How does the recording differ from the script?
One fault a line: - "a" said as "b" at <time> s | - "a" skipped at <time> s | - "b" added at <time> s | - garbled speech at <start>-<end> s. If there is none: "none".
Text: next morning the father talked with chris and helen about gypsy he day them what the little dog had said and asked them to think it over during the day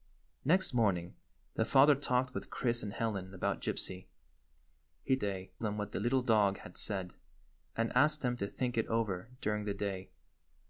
none